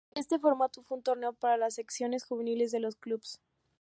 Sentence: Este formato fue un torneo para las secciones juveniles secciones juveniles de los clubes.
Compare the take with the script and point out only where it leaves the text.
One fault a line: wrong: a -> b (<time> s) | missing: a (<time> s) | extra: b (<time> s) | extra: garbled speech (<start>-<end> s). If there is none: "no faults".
missing: secciones juveniles (2.7 s)